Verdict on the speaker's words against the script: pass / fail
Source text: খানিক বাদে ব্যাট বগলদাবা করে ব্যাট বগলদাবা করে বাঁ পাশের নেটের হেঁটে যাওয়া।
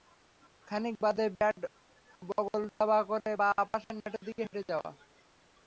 fail